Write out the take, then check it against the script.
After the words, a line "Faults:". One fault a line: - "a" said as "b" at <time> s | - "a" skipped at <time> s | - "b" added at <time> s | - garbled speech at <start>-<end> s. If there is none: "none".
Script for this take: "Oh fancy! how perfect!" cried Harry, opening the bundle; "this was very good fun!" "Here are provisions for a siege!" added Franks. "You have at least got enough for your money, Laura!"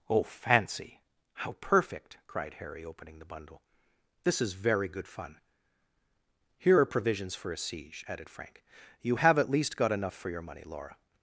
"Oh fancy! how perfect!" cried Harry, opening the bundle; "this is very good fun!" "Here are provisions for a siege!" added Frank. "You have at least got enough for your money, Laura!"
Faults:
- "was" said as "is" at 4.4 s
- "Franks" said as "Frank" at 8.3 s